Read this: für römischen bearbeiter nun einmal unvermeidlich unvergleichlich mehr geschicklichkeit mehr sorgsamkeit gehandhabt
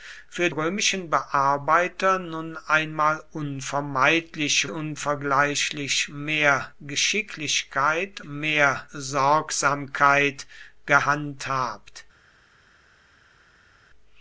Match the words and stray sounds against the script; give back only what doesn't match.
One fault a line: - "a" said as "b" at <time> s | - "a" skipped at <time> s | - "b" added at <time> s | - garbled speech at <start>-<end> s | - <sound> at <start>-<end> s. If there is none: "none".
none